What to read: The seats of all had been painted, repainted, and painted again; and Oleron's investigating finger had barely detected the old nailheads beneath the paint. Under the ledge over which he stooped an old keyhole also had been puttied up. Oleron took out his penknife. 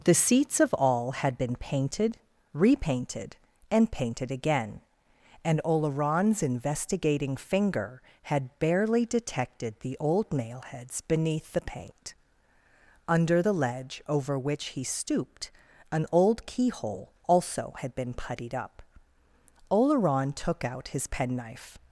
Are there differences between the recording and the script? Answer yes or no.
no